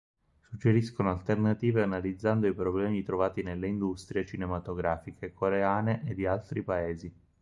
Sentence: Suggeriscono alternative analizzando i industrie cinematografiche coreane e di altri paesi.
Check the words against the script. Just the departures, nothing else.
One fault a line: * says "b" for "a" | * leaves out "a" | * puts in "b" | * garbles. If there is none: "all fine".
* puts in "problemi trovati nelle"